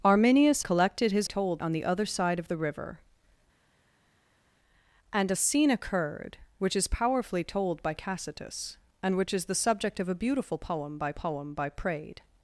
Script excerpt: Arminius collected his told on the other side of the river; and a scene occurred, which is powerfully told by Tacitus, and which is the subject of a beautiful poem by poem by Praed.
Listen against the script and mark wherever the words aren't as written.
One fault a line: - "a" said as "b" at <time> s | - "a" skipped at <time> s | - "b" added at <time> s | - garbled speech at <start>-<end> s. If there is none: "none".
none